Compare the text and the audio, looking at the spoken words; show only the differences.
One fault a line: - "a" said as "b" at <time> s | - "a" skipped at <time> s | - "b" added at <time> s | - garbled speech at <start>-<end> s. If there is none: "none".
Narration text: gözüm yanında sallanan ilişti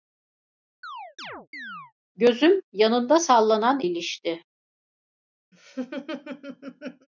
none